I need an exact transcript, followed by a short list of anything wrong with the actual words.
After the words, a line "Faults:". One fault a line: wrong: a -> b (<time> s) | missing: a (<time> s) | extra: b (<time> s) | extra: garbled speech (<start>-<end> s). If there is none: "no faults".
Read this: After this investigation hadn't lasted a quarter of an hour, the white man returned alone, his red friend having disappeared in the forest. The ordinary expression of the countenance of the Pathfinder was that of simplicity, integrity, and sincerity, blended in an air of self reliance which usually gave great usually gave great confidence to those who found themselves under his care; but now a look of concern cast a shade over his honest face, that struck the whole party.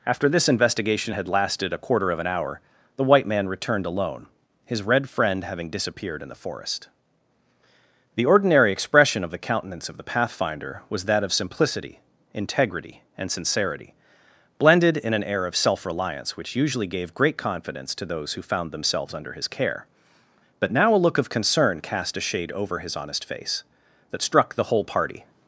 After this investigation had lasted a quarter of an hour, the white man returned alone, his red friend having disappeared in the forest. The ordinary expression of the countenance of the Pathfinder was that of simplicity, integrity, and sincerity, blended in an air of self reliance which usually gave great confidence to those who found themselves under his care; but now a look of concern cast a shade over his honest face, that struck the whole party.
Faults:
wrong: hadn't -> had (1.1 s)
missing: usually gave great (17.4 s)